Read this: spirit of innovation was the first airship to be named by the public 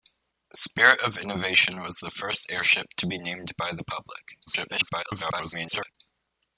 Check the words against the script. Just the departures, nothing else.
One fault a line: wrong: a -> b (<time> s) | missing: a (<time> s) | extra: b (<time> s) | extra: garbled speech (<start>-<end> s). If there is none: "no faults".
extra: garbled speech (4.5-6.0 s)